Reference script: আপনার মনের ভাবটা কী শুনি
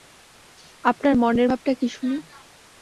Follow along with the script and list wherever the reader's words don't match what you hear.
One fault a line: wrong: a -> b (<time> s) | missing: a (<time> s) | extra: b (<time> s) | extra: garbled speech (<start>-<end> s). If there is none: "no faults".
no faults